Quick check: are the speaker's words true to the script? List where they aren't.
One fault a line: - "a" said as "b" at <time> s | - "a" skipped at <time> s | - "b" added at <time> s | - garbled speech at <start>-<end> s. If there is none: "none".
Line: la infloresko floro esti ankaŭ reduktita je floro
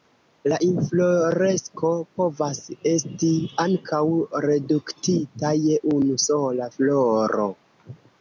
- "floro" said as "povas" at 2.2 s
- "unu sola" added at 6.0 s